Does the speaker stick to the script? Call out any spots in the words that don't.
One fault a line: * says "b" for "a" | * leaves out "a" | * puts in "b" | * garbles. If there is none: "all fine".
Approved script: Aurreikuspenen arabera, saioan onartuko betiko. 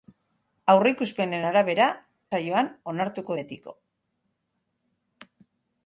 all fine